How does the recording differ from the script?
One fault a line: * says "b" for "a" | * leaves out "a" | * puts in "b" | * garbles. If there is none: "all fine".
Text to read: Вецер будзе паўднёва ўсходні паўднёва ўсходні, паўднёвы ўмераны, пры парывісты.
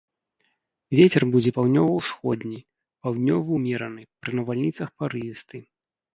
* leaves out "паўднёва ўсходні"
* puts in "навальніцах"